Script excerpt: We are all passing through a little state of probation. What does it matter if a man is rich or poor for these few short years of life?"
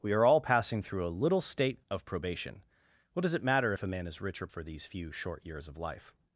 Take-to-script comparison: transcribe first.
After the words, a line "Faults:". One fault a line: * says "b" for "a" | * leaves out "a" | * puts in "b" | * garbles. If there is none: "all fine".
We are all passing through a little state of probation. What does it matter if a man is rich or for these few short years of life?"
Faults:
* leaves out "poor"